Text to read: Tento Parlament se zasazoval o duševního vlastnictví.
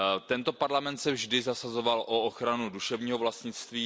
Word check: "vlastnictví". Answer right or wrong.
right